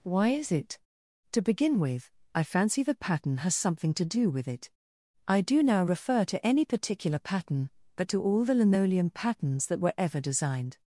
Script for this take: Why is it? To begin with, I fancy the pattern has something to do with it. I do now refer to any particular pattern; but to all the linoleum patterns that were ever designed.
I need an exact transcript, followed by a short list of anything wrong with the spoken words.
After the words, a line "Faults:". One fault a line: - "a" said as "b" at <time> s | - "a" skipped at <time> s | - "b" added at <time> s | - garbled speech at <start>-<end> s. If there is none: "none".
Why is it? To begin with, I fancy the pattern has something to do with it. I do now refer to any particular pattern; but to all the linoleum patterns that were ever designed.
Faults:
none